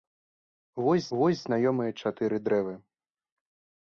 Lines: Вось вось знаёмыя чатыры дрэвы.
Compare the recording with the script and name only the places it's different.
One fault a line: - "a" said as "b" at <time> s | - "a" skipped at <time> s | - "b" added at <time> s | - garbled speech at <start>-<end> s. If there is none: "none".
none